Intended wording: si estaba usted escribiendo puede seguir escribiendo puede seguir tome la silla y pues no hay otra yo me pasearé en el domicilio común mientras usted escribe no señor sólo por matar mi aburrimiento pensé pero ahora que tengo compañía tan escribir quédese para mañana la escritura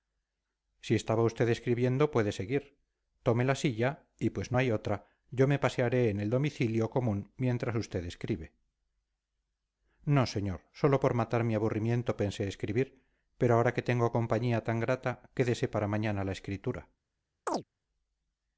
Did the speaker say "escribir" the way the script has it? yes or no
no